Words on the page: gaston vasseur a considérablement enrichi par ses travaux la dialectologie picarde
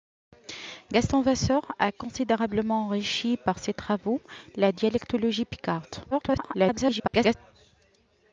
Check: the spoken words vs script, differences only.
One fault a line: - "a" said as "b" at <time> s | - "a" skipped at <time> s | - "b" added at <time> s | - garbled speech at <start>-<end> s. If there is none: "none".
- garbled speech at 6.1-7.3 s